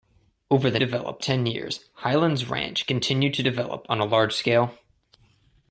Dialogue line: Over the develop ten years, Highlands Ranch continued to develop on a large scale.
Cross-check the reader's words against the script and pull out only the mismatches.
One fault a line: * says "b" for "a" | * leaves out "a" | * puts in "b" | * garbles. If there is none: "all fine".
all fine